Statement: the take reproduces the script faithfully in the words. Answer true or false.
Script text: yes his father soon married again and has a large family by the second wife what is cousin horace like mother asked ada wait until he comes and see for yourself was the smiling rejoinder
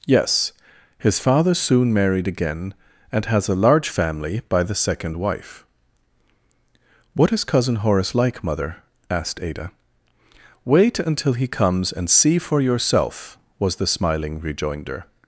true